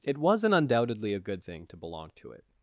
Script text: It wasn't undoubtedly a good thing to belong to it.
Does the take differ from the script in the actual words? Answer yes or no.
no